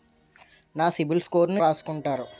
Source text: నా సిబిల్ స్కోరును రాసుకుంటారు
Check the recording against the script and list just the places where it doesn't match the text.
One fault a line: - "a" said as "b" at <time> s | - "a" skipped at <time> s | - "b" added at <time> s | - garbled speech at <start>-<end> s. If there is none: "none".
none